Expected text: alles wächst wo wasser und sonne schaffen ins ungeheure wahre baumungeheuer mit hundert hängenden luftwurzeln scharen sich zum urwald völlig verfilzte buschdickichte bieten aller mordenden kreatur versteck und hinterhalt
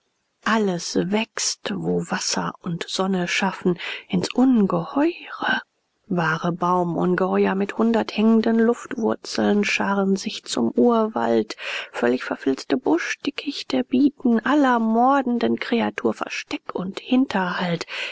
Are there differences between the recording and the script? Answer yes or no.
no